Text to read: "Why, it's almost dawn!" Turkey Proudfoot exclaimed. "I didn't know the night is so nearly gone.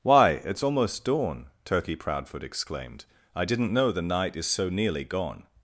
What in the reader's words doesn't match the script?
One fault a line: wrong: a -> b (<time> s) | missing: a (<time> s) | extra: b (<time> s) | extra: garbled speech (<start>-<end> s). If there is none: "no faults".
no faults